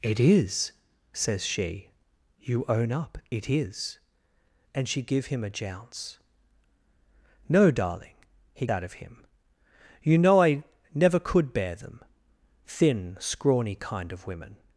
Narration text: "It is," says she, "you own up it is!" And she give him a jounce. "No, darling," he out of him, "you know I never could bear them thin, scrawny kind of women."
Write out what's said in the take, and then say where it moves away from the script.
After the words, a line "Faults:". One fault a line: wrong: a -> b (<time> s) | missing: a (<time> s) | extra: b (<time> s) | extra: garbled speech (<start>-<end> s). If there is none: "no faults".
"It is," says she, "you own up it is!" And she give him a jounce. "No, darling," he out of him, "you know I never could bear them thin, scrawny kind of women."
Faults:
no faults